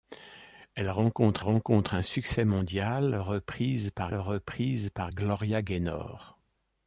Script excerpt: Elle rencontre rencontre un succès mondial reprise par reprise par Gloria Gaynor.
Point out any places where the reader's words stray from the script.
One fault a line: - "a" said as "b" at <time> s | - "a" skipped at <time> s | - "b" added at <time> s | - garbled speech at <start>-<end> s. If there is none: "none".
none